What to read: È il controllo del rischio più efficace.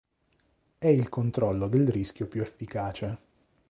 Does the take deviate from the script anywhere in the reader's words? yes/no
no